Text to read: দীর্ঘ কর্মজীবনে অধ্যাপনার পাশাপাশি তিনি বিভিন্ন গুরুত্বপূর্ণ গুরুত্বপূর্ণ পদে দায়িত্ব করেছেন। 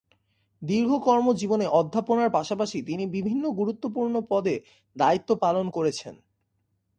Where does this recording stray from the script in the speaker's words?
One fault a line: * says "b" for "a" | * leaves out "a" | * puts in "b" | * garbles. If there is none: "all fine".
* leaves out "গুরুত্বপূর্ণ"
* puts in "পালন"